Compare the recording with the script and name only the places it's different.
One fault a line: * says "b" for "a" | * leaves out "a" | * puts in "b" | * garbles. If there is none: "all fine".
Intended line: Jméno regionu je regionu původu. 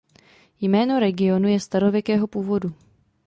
* says "starověkého" for "regionu"